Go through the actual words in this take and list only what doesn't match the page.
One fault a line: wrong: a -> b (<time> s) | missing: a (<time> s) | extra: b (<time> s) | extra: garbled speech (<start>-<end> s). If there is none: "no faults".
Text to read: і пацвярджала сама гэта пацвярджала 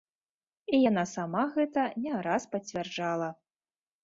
wrong: пацвярджала -> яна (0.9 s)
extra: не раз (2.0 s)